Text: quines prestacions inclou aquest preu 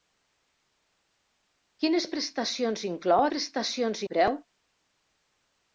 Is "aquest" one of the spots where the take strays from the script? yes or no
yes